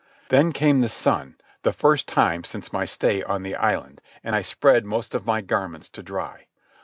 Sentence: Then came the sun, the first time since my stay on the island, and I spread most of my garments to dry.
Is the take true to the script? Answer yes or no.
yes